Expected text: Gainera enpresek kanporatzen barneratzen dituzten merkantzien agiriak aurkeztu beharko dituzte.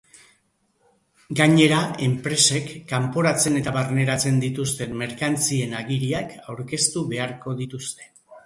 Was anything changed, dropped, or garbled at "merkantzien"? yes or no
no